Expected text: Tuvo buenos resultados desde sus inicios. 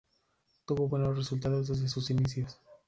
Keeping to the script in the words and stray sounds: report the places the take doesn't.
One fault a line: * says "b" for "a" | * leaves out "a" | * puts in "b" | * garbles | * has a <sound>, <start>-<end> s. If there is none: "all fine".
all fine